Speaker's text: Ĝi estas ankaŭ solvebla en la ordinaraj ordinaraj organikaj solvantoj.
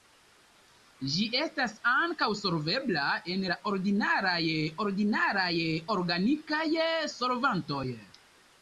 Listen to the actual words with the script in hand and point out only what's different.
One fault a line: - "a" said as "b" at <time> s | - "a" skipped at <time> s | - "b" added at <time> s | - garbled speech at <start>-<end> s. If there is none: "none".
none